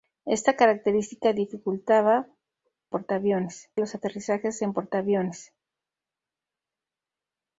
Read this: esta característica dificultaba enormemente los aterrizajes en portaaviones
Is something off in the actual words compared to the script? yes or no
yes